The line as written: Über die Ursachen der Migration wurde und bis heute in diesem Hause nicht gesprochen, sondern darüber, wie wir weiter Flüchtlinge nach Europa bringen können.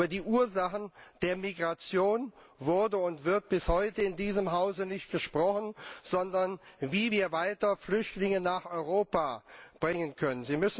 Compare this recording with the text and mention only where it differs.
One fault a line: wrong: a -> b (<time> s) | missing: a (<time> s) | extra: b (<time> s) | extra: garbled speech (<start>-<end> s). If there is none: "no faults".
extra: wird (3.2 s)